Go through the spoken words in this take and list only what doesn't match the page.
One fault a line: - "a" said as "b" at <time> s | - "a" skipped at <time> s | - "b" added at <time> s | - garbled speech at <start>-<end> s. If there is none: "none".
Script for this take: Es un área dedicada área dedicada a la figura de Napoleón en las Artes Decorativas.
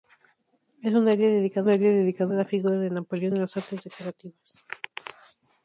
none